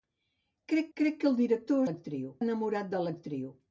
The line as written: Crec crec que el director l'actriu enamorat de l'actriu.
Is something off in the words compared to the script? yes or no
no